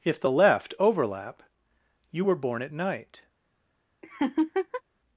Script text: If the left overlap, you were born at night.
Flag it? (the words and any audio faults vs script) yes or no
yes